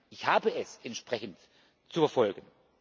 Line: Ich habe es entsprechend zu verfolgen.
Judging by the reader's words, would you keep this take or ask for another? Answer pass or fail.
pass